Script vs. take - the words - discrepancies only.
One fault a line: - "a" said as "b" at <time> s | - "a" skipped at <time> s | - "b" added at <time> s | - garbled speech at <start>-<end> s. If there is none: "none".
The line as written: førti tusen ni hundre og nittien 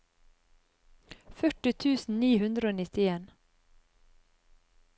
none